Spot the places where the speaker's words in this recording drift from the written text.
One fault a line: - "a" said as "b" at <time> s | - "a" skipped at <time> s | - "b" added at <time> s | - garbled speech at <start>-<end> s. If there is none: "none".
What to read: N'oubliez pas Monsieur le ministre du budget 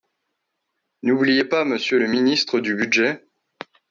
none